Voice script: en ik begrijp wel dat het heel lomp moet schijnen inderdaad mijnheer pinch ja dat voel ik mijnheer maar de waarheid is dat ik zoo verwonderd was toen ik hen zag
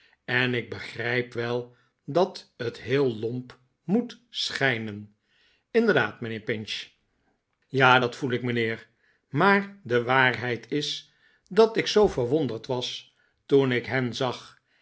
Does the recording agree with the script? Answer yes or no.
yes